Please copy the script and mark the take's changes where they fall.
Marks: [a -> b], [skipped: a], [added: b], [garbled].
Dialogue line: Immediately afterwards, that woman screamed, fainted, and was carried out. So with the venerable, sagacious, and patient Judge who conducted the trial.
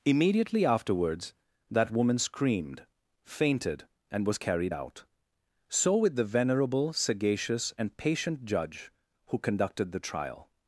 Immediately afterwards, that woman screamed, fainted, and was carried out. So with the venerable, sagacious, and patient Judge who conducted the trial.